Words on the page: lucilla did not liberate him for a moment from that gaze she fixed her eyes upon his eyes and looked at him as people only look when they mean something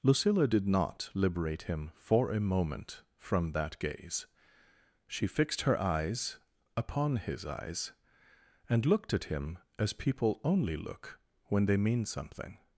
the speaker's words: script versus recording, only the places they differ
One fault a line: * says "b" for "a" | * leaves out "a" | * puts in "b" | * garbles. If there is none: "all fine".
all fine